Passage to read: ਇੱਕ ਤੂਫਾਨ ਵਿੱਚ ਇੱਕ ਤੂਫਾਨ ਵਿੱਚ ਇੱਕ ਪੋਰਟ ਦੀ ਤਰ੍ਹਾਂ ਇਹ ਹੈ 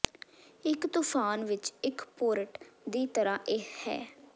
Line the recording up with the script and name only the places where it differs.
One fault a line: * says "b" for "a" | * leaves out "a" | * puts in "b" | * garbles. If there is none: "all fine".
* leaves out "ਤੂਫਾਨ ਵਿੱਚ ਇੱਕ"